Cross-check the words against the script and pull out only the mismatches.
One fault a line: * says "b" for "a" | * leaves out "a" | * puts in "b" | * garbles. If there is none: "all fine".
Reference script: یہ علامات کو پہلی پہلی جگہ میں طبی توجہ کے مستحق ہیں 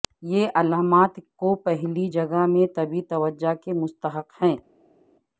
* leaves out "پہلی"